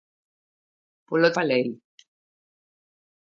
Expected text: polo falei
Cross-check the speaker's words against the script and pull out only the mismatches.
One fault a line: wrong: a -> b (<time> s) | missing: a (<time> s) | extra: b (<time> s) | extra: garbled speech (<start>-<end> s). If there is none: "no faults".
no faults